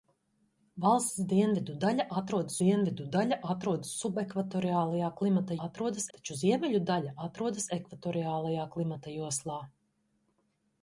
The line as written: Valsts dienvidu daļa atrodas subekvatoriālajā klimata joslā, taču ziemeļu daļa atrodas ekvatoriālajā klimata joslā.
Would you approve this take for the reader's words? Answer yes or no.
no